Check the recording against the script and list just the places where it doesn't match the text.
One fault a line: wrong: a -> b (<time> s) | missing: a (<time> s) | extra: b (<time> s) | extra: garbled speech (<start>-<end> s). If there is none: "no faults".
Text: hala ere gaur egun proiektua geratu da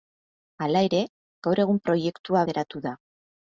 no faults